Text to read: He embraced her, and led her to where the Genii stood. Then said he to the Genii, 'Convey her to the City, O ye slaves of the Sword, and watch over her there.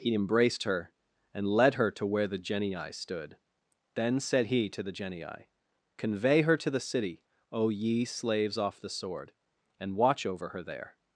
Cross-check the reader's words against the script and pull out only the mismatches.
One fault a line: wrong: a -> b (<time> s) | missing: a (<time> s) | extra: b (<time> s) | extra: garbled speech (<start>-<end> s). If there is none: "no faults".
wrong: of -> off (8.6 s)